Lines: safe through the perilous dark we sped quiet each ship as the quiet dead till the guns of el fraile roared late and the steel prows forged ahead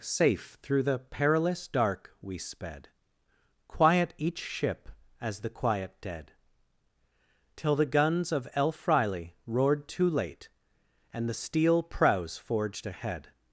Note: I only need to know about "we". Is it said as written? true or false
true